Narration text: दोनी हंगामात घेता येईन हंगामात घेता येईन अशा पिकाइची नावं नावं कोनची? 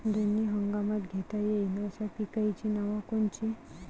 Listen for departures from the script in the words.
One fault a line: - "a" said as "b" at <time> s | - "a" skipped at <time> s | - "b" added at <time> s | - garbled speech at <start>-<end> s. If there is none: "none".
- "हंगामात घेता येईन" skipped at 1.9 s
- "नावं" skipped at 3.0 s